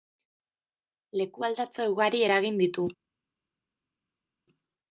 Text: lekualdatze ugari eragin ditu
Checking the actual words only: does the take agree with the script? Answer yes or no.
yes